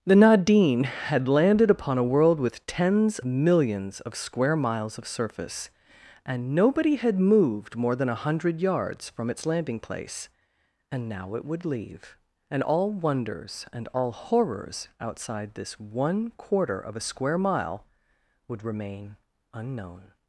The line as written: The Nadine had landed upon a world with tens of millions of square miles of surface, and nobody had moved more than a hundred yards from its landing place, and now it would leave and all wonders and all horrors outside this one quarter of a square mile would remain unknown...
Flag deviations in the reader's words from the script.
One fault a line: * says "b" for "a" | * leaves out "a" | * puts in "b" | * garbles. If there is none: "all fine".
* leaves out "of"